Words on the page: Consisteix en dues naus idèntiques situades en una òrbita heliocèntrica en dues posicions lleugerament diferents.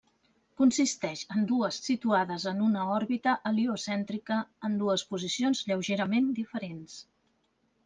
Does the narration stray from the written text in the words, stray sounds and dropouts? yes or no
yes